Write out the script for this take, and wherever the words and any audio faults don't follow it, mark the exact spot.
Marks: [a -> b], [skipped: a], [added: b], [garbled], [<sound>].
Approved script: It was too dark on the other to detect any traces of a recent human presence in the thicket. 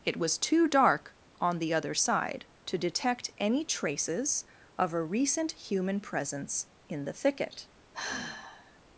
It was too dark on the other [added: side] to detect any traces of a recent human presence in the thicket. [sigh]